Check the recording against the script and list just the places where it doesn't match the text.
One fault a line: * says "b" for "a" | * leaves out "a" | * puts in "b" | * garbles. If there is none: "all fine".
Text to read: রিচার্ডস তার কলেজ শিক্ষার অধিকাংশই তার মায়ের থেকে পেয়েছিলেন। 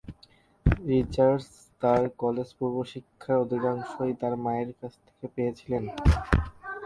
* puts in "পূর্ব"
* puts in "কাছ"